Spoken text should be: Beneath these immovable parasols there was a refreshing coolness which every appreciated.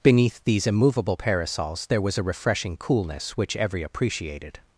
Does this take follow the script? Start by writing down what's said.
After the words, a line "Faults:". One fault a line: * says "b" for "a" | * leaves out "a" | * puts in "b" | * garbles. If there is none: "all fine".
Beneath these immovable parasols there was a refreshing coolness which every appreciated.
Faults:
all fine